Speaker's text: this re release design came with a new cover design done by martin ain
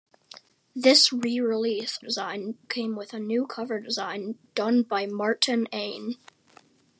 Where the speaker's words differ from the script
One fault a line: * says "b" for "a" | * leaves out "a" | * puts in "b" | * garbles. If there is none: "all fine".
all fine